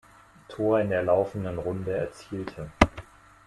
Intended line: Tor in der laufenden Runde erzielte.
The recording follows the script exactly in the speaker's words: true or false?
true